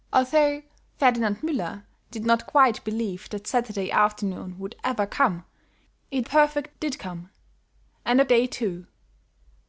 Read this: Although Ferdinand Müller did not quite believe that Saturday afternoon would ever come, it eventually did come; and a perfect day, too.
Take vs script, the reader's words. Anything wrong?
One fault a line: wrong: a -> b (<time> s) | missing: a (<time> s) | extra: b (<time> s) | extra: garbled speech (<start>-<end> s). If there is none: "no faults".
wrong: eventually -> perfect (6.2 s)
missing: perfect (8.3 s)